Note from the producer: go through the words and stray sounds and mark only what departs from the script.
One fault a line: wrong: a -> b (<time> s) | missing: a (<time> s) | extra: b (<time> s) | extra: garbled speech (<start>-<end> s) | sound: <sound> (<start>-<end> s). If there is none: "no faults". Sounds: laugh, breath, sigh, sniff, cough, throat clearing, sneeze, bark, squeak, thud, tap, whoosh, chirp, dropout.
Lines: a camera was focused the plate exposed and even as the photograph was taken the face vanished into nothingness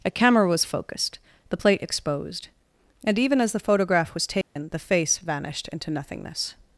sound: dropout (4.4-4.6 s)